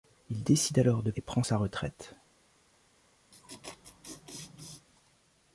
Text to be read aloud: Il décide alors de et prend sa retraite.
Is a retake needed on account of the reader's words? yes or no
no